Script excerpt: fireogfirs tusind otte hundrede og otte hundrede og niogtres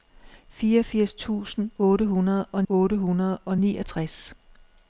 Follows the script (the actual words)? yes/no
yes